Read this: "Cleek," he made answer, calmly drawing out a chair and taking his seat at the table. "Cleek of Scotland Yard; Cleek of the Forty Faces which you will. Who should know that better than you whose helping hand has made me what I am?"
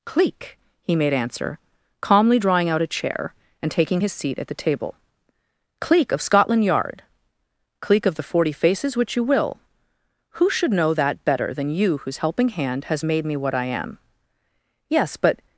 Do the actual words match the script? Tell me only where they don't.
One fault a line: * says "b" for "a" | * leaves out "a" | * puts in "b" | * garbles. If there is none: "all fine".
* puts in "Yes but"